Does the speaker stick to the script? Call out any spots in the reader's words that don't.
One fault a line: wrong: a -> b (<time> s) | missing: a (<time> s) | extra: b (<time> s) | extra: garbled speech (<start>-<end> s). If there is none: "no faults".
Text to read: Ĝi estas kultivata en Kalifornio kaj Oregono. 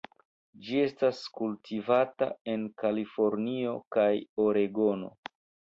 no faults